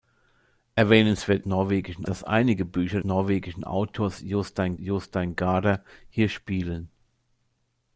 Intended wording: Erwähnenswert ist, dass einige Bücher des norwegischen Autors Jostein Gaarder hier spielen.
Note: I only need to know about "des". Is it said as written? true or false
false